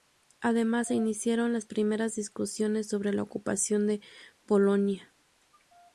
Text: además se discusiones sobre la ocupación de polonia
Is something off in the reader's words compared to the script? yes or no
yes